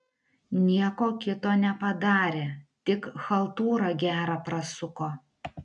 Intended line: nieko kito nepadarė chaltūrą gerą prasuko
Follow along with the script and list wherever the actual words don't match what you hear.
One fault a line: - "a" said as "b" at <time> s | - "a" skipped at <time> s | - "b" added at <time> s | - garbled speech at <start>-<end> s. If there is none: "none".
- "tik" added at 2.9 s